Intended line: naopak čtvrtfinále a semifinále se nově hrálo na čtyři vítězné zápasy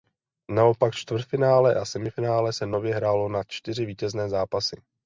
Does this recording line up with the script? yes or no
yes